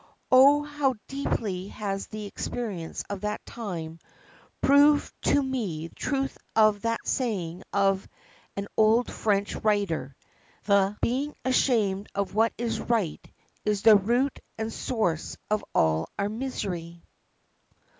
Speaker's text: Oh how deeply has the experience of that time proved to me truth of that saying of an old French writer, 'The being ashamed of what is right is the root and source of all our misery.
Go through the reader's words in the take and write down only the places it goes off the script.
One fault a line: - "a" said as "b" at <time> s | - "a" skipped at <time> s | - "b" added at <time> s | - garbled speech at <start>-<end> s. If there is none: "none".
none